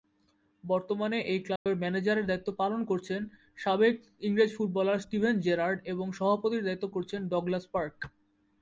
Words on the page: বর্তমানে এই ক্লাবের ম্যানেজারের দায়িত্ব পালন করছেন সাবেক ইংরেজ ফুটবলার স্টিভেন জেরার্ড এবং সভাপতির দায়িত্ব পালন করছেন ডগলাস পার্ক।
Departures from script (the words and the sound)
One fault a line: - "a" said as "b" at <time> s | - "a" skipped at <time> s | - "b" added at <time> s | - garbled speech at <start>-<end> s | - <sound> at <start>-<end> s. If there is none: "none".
- dropout at 1.6-1.7 s
- "পালন" skipped at 6.8 s